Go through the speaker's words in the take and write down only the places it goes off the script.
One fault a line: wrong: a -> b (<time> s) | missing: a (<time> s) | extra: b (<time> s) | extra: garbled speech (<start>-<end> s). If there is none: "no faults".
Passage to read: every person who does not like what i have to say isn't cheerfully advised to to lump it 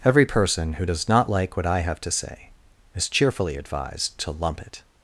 wrong: isn't -> is (2.9 s)
missing: to (4.3 s)